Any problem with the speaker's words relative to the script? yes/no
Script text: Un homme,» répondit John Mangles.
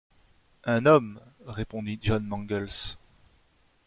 no